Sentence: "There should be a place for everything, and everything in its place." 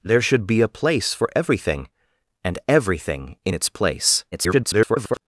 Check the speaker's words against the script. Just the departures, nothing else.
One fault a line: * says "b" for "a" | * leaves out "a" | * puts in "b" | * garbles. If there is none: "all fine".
* garbles